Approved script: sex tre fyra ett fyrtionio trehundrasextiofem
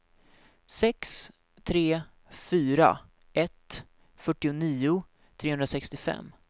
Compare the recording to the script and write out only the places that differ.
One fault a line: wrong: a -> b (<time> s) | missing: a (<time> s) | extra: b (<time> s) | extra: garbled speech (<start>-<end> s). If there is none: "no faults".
no faults